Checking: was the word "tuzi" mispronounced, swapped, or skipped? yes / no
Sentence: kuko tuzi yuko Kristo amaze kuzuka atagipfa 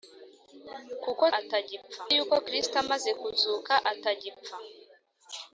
yes